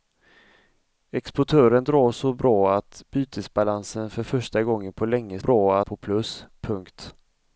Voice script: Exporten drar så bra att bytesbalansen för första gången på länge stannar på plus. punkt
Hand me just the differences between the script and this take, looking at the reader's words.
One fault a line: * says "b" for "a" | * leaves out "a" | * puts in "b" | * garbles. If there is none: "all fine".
* says "bra" for "stannar"